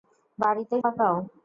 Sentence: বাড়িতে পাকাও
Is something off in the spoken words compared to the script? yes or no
no